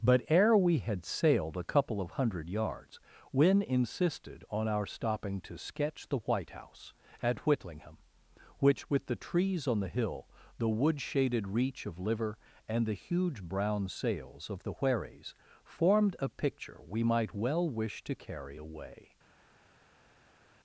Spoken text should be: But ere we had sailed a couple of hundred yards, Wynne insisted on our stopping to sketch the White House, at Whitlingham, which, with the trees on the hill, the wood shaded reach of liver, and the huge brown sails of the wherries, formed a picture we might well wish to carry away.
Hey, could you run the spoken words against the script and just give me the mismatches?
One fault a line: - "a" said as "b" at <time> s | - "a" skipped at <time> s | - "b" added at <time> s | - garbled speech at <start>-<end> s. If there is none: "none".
none